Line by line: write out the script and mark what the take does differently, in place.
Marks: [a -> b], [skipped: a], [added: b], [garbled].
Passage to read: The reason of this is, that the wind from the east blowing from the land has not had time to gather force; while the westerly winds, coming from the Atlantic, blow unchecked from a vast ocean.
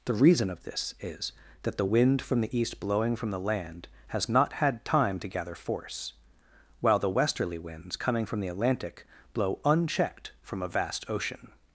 The reason of this is, that the wind from the east blowing from the land has not had time to gather force; while the westerly winds, coming from the Atlantic, blow unchecked from a vast ocean.